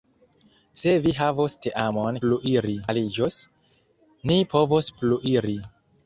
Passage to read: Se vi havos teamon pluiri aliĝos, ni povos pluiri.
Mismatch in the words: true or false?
false